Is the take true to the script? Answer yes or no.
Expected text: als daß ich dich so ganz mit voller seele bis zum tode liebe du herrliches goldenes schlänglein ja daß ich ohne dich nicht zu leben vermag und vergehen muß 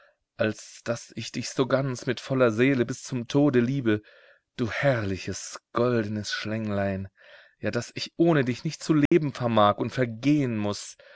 yes